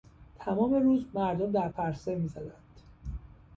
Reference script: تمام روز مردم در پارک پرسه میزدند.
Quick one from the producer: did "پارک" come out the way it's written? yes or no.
no